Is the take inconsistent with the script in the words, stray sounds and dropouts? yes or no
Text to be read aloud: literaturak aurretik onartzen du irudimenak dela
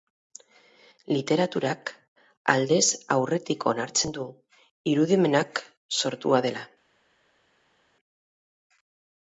yes